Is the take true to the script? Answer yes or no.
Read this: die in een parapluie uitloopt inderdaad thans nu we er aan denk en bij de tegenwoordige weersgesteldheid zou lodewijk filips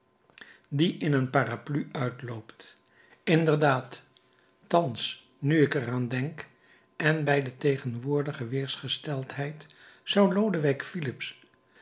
no